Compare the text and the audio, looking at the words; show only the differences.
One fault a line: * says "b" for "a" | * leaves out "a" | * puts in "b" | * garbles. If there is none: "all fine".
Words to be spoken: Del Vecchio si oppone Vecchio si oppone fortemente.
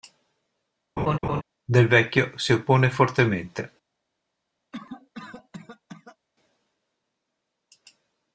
* leaves out "Vecchio si oppone"